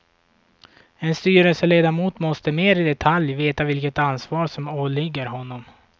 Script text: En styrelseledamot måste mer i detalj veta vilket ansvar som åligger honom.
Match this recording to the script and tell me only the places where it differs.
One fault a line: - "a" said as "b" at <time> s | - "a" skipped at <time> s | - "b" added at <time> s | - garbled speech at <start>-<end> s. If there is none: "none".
none